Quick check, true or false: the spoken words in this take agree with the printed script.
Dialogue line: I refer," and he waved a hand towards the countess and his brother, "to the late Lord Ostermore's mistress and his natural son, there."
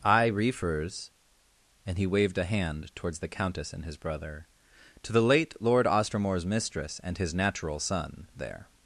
false